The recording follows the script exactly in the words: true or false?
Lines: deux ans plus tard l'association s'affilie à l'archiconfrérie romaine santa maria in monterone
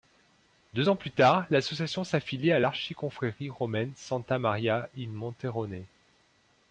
true